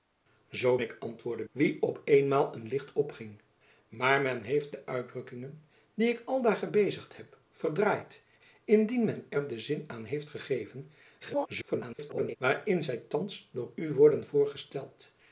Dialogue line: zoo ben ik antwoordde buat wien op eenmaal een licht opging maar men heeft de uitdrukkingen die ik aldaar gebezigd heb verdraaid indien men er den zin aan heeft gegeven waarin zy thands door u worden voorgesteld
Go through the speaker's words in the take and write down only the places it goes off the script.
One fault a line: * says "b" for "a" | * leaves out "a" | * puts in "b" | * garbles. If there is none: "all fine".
* leaves out "ben"
* leaves out "buat"
* garbles